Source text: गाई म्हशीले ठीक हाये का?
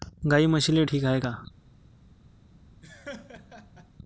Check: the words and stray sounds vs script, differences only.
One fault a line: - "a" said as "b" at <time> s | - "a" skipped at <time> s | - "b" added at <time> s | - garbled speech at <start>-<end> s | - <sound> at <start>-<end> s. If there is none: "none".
- laugh at 2.8-3.9 s